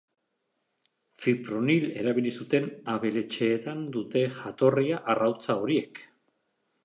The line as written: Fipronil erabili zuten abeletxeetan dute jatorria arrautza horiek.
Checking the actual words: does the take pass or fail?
pass